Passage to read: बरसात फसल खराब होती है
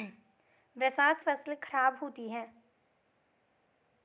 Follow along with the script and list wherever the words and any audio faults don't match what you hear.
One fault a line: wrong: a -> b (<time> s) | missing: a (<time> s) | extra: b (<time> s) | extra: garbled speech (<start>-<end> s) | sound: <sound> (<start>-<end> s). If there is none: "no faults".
no faults